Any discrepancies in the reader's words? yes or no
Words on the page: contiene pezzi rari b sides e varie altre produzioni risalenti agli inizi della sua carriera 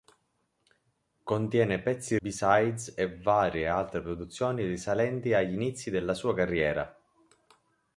yes